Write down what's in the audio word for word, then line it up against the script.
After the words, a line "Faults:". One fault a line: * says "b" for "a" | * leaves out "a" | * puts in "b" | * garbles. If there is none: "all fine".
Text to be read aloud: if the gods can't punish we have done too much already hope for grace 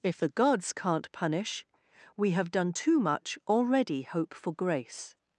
if the gods can't punish we have done too much already hope for grace
Faults:
all fine